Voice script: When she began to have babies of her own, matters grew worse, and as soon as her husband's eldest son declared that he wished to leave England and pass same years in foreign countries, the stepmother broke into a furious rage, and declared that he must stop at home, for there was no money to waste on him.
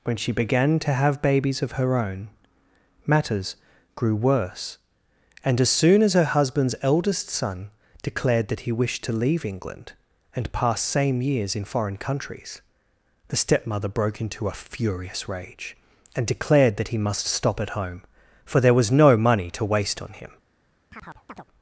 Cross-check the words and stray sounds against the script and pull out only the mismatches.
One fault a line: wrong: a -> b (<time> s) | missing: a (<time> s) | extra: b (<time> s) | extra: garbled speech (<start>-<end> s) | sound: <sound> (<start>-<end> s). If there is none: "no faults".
sound: chirp (20.9-21.5 s)